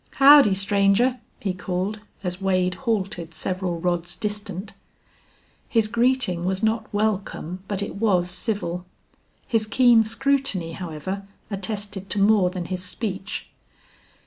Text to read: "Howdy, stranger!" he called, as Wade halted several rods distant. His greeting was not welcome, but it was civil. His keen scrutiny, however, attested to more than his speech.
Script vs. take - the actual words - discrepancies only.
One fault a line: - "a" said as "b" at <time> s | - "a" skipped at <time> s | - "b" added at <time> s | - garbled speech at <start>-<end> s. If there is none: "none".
none